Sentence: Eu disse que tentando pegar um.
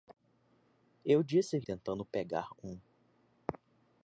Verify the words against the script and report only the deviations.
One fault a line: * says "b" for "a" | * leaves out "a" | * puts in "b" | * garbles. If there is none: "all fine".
all fine